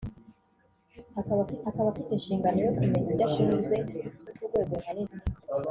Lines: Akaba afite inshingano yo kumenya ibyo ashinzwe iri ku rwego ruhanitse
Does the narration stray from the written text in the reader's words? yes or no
yes